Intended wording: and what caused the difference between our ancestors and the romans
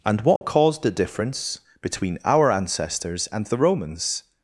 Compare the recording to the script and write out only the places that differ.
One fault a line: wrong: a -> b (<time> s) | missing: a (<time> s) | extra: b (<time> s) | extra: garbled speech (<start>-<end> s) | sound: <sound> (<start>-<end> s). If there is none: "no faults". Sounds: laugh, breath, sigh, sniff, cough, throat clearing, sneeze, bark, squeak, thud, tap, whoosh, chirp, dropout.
sound: dropout (0.4-0.4 s)